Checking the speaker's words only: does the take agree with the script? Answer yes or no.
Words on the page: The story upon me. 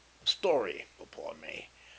yes